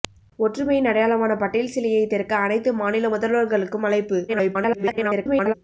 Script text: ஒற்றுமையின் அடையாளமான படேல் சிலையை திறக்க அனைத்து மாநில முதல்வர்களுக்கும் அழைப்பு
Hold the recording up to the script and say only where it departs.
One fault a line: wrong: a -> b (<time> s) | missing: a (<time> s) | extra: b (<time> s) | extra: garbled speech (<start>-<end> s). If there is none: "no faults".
extra: garbled speech (4.3-5.5 s)